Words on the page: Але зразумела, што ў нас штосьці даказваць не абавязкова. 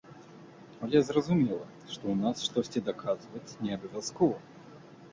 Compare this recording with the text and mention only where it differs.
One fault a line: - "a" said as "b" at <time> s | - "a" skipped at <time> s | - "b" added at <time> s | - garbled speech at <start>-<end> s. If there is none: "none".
none